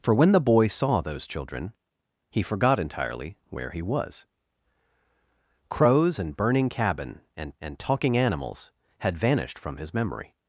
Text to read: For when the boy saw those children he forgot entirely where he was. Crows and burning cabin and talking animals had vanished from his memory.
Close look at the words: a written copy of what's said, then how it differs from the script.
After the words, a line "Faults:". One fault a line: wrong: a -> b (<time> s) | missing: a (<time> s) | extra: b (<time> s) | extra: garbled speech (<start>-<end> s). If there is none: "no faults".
For when the boy saw those children he forgot entirely where he was. Crows and burning cabin and and talking animals had vanished from his memory.
Faults:
extra: and (7.6 s)